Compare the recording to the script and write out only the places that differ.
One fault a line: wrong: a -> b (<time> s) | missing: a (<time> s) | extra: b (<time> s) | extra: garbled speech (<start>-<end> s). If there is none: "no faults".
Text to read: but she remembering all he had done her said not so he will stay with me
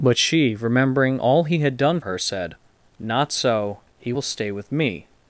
no faults